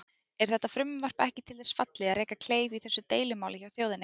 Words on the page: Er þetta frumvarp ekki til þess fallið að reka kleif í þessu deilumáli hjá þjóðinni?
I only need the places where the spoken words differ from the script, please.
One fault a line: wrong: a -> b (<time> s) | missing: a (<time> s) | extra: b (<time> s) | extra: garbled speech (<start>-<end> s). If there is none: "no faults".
no faults